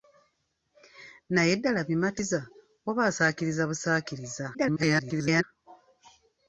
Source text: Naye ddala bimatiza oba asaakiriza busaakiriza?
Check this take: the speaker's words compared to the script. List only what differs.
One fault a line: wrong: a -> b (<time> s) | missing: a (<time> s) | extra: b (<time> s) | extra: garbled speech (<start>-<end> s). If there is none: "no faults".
extra: garbled speech (4.5-5.4 s)